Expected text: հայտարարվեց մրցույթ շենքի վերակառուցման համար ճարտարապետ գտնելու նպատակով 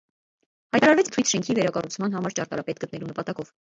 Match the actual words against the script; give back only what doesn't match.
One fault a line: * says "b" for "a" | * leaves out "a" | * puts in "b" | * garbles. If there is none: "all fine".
all fine